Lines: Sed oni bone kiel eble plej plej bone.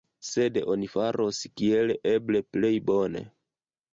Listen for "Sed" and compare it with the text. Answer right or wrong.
right